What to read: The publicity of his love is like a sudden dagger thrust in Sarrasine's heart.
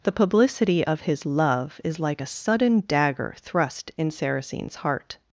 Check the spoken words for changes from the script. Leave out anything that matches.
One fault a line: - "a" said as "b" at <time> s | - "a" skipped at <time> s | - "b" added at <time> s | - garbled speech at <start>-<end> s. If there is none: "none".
none